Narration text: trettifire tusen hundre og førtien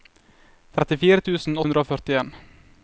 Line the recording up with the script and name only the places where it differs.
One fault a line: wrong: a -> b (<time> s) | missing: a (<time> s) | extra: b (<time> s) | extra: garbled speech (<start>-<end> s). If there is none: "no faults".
no faults